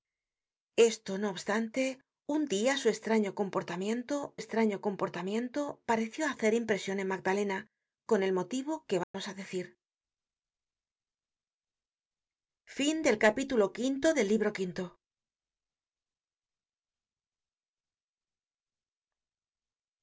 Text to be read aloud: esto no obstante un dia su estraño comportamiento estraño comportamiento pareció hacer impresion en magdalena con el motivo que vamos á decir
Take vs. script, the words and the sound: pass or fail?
fail